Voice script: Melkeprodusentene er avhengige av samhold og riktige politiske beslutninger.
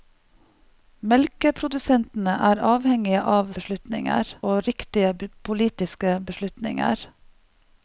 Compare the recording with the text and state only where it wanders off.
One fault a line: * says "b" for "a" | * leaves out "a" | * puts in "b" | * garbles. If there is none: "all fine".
* says "beslutninger" for "samhold"